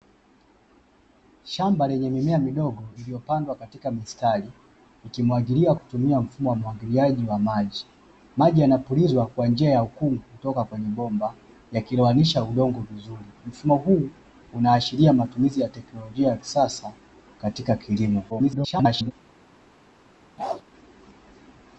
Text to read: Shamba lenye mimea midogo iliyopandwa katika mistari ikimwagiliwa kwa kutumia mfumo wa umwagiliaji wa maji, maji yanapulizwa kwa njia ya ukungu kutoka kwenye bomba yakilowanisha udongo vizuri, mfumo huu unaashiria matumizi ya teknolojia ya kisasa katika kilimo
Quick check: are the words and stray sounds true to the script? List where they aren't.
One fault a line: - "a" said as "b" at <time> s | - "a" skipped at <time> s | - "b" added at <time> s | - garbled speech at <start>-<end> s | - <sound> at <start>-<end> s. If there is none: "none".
- "kwa" skipped at 5.8 s
- garbled speech at 18.3-19.1 s
- bark at 20.4-20.6 s